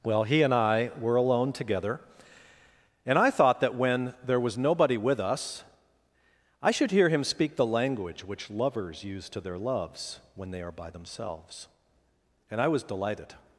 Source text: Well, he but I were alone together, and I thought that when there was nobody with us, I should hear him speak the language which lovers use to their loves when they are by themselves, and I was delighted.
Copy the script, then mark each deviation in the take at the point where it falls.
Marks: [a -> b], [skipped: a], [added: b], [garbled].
Well, he [but -> and] I were alone together, and I thought that when there was nobody with us, I should hear him speak the language which lovers use to their loves when they are by themselves, and I was delighted.